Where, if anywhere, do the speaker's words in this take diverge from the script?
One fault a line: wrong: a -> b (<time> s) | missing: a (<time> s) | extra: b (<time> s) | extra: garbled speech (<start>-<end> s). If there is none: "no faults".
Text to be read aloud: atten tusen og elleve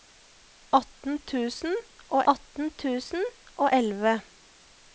extra: atten tusen og (2.3 s)